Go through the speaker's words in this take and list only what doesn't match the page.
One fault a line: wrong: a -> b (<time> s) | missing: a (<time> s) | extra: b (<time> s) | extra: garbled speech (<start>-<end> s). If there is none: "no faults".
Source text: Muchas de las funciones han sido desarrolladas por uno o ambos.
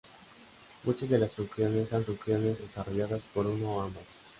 wrong: sido -> funciones (2.0 s)